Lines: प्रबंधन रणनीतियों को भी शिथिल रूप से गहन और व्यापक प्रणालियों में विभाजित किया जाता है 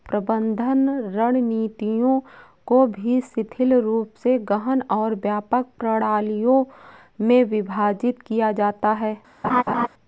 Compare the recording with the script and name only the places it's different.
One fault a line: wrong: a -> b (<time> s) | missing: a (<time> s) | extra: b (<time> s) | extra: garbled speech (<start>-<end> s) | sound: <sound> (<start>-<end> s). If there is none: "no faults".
sound: laugh (9.4-9.9 s)